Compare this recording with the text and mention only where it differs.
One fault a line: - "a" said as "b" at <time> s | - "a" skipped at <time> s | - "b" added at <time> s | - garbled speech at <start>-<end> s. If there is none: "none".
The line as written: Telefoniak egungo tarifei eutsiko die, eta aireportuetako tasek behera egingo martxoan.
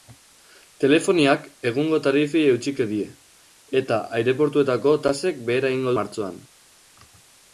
none